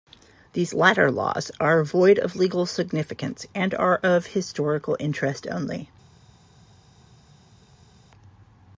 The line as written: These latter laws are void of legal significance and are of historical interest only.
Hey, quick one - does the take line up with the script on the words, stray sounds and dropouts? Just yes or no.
yes